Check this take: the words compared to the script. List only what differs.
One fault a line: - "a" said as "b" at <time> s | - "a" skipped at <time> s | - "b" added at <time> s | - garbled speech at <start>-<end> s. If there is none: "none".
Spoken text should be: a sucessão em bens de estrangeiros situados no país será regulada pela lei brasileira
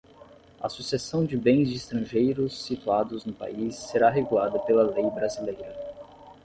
- "em" said as "de" at 1.2 s